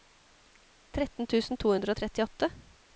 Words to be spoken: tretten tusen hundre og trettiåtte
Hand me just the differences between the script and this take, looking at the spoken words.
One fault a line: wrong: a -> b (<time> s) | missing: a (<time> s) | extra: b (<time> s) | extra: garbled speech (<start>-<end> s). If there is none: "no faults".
extra: to (1.6 s)